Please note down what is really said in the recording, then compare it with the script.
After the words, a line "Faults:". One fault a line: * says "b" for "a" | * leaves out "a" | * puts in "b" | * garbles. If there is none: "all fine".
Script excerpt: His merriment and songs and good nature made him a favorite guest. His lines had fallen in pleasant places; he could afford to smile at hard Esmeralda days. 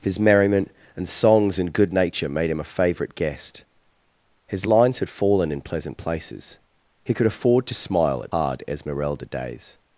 His merriment and songs and good nature made him a favorite guest. His lines had fallen in pleasant places; he could afford to smile at hard Esmeralda days.
Faults:
all fine